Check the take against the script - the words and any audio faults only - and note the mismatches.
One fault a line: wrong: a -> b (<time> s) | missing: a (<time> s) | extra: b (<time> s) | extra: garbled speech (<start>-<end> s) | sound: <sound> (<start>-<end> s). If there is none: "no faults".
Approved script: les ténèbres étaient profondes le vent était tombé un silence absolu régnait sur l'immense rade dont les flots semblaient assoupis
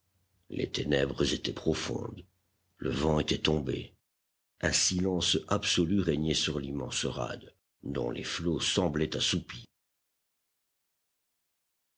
no faults